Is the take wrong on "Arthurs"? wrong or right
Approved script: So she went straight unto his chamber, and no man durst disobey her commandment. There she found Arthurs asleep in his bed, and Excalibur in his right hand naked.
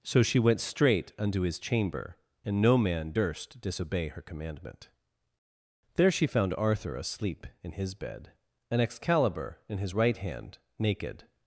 wrong